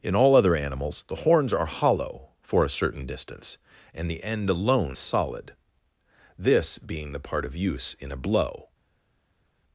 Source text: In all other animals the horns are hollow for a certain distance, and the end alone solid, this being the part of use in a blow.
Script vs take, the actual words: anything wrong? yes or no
no